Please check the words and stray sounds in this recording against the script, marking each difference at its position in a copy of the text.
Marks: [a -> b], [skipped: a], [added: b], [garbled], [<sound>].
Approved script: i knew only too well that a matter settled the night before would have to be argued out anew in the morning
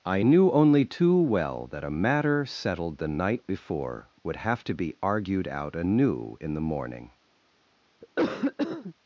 i knew only too well that a matter settled the night before would have to be argued out anew in the morning [cough]